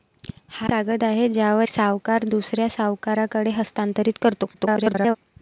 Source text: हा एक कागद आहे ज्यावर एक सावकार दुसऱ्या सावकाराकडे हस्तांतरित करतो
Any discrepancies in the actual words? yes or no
yes